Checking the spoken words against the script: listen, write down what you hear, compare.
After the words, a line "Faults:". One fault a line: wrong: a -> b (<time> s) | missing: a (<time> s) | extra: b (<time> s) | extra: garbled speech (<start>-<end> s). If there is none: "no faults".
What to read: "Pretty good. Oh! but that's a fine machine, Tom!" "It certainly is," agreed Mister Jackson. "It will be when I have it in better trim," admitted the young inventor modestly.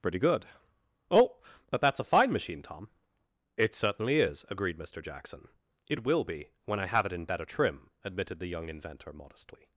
"Pretty good. Oh! but that's a fine machine, Tom!" "It certainly is," agreed Mister Jackson. "It will be when I have it in better trim," admitted the young inventor modestly.
Faults:
no faults